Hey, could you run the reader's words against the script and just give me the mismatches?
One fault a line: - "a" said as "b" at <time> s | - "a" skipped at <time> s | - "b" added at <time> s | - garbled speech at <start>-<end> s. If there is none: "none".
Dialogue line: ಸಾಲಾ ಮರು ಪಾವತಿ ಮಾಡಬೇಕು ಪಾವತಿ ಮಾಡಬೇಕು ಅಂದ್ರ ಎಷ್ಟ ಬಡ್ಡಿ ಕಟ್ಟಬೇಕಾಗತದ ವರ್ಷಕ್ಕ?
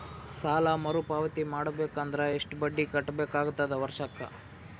- "ಪಾವತಿ ಮಾಡಬೇಕು" skipped at 2.0 s